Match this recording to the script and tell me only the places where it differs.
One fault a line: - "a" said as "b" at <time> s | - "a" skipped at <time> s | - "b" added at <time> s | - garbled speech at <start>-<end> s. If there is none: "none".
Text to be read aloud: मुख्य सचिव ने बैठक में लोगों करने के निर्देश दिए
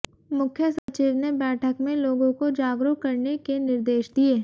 - "को जागरूक" added at 2.4 s